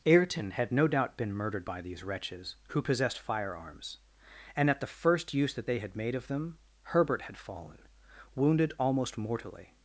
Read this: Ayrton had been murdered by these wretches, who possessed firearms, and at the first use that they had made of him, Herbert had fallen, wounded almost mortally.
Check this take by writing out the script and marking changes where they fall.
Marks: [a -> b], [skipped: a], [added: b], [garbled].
Ayrton had [added: no doubt] been murdered by these wretches, who possessed firearms, and at the first use that they had made of [him, -> them] Herbert had fallen, wounded almost mortally.